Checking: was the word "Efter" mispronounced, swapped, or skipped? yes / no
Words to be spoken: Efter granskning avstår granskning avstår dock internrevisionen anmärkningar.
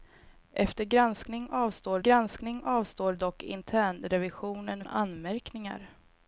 no